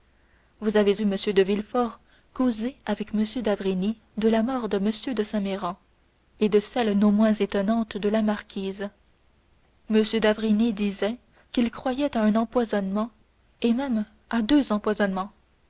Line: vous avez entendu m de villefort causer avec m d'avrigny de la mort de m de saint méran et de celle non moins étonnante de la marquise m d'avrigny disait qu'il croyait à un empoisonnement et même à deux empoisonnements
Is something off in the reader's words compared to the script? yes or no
yes